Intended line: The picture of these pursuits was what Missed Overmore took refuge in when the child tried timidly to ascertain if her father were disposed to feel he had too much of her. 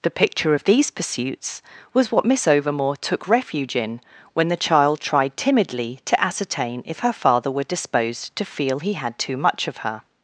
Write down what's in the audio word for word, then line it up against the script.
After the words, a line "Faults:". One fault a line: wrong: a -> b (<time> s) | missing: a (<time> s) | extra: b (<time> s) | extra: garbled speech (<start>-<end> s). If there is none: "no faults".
The picture of these pursuits was what Miss Overmore took refuge in when the child tried timidly to ascertain if her father were disposed to feel he had too much of her.
Faults:
wrong: Missed -> Miss (2.2 s)